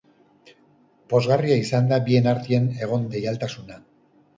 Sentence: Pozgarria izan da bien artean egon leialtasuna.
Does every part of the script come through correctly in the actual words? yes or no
yes